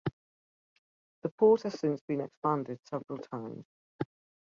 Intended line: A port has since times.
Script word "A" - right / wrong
wrong